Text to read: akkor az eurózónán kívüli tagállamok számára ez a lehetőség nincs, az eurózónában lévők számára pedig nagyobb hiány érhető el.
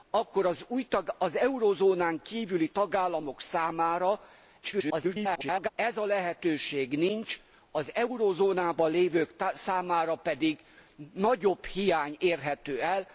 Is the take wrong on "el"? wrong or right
right